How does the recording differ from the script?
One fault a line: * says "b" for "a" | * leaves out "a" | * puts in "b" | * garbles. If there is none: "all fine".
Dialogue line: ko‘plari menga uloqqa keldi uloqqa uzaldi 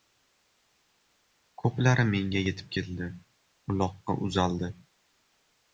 * says "yetib" for "uloqqa"